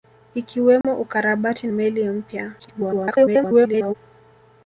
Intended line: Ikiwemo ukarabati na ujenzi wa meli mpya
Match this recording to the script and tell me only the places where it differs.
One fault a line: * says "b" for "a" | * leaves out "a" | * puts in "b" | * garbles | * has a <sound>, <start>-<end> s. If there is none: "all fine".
* has a dropout, 0.8-0.8 s
* leaves out "na ujenzi wa"
* garbles